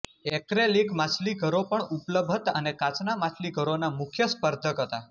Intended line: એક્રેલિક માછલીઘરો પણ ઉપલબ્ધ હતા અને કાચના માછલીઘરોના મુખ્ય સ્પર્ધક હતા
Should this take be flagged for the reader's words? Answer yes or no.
no